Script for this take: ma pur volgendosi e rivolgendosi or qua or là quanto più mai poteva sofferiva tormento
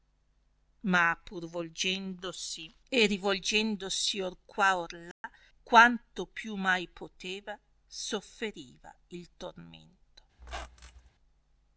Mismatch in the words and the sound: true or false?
true